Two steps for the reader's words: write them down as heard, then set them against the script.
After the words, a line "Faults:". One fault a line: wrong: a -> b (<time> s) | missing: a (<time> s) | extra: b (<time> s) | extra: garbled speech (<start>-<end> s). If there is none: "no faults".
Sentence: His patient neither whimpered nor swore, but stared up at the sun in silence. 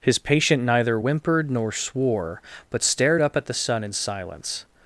His patient neither whimpered nor swore, but stared up at the sun in silence.
Faults:
no faults